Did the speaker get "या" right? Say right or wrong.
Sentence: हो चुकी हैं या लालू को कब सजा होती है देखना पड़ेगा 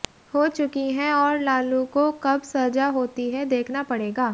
wrong